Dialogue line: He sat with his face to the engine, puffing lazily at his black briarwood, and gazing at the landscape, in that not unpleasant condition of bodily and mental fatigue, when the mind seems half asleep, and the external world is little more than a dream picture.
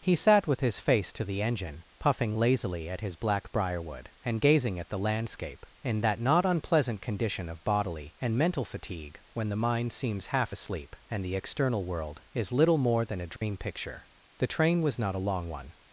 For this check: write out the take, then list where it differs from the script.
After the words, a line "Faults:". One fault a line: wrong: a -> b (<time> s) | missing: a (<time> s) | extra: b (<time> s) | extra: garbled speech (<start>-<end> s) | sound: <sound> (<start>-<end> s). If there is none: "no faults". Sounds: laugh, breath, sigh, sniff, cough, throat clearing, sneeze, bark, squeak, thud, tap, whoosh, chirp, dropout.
He sat with his face to the engine, puffing lazily at his black briarwood, and gazing at the landscape, in that not unpleasant condition of bodily and mental fatigue, when the mind seems half asleep, and the external world is little more than a dream picture. The train was not a long one
Faults:
sound: dropout (13.4-13.4 s)
extra: The train was not a long one (14.4 s)